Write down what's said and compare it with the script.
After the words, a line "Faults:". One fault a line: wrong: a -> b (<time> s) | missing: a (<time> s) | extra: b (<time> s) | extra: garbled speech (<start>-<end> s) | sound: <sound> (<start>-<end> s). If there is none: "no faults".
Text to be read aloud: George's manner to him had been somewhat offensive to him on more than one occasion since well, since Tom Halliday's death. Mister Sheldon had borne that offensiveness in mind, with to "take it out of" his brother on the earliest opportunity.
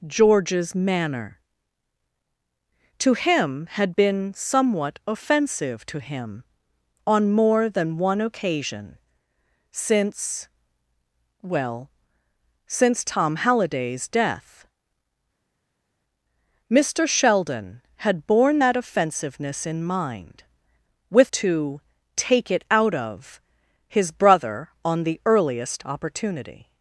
George's manner to him had been somewhat offensive to him on more than one occasion since well, since Tom Halliday's death. Mister Sheldon had borne that offensiveness in mind, with to "take it out of" his brother on the earliest opportunity.
Faults:
no faults